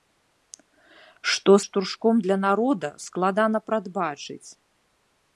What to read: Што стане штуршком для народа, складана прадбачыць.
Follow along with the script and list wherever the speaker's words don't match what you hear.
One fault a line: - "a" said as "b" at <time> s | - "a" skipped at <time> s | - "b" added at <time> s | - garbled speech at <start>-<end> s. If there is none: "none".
- "стане" skipped at 1.5 s